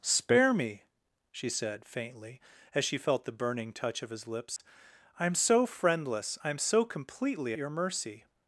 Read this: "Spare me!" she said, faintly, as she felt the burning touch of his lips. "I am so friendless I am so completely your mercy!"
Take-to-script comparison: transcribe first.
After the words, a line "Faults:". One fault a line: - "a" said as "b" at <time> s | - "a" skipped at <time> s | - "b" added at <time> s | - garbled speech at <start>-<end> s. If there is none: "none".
"Spare me!" she said, faintly, as she felt the burning touch of his lips. "I am so friendless I am so completely your mercy!"
Faults:
none